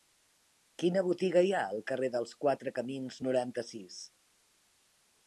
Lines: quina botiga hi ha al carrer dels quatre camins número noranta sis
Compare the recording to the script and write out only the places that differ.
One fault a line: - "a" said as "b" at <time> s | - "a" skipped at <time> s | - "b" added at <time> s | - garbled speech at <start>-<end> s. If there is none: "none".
- "número" skipped at 3.2 s